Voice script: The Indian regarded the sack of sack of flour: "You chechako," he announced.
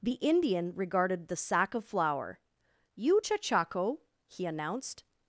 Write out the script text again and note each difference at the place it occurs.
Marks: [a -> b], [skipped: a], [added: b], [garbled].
The Indian regarded the sack of [skipped: sack of] flour: "You chechako," he announced.